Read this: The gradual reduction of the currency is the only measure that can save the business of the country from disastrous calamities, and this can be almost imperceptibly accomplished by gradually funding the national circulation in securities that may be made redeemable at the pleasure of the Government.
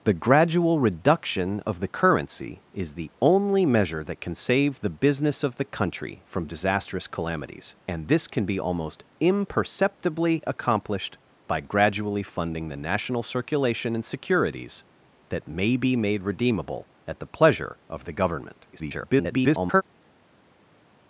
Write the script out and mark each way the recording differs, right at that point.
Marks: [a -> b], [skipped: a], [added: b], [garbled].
The gradual reduction of the currency is the only measure that can save the business of the country from disastrous calamities, and this can be almost imperceptibly accomplished by gradually funding the national circulation in securities that may be made redeemable at the pleasure of the Government. [garbled]